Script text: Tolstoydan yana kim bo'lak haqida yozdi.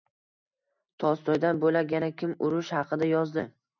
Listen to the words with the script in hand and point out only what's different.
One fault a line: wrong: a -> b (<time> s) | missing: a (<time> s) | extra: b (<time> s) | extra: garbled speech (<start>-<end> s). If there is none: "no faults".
extra: bo'lak (1.6 s)
wrong: bo'lak -> urush (2.5 s)